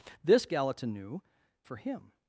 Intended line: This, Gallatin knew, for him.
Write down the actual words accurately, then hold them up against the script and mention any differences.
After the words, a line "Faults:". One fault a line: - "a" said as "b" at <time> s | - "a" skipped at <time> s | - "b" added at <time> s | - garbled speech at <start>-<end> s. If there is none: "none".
This, Gallatin knew, for him.
Faults:
none